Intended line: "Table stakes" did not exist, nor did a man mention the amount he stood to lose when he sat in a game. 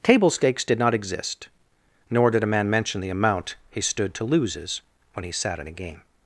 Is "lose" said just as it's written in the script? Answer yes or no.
no